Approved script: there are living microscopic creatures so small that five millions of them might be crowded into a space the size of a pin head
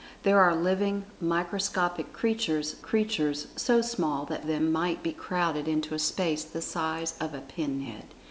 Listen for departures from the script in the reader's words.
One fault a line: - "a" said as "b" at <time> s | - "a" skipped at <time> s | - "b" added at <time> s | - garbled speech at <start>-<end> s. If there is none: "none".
- "creatures" added at 2.8 s
- "five millions of" skipped at 4.4 s